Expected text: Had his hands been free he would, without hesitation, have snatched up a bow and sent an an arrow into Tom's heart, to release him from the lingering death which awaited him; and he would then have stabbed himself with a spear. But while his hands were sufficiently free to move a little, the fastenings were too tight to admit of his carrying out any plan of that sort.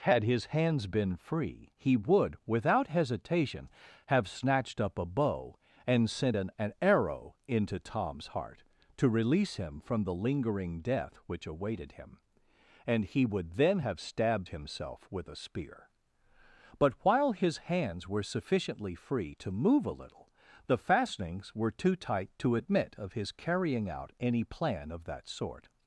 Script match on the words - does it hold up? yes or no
yes